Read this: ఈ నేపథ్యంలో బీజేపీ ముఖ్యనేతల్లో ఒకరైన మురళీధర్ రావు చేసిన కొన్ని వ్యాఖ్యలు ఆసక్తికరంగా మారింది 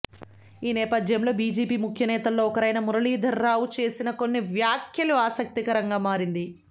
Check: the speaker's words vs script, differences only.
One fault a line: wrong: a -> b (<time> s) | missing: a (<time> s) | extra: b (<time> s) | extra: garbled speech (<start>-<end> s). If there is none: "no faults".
no faults